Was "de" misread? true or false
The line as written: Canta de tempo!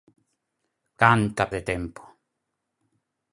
false